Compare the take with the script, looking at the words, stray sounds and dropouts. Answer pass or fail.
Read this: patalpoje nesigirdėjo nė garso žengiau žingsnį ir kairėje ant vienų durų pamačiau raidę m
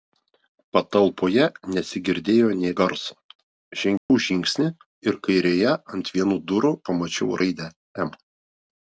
fail